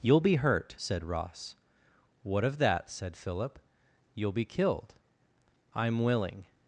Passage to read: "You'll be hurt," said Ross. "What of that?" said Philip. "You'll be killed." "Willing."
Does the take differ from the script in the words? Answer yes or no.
yes